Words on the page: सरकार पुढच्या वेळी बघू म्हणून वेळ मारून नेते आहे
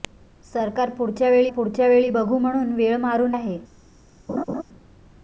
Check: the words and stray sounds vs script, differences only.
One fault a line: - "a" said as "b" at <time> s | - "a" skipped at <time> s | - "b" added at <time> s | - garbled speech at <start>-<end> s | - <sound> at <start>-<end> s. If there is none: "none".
- "पुढच्या वेळी" added at 1.5 s
- "नेते" skipped at 3.3 s
- laugh at 4.3-4.6 s